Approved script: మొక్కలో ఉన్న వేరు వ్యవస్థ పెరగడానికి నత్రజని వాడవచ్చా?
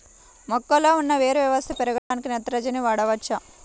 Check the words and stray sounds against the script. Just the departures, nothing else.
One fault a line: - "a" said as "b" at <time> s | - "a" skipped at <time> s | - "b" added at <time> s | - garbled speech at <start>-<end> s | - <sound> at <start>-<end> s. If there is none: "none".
- dropout at 2.0-2.1 s